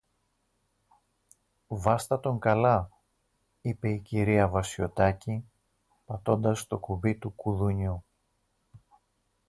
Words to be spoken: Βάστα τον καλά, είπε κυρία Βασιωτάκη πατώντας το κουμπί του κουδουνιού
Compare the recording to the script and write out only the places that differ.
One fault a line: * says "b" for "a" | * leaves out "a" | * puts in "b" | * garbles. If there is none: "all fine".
* puts in "η"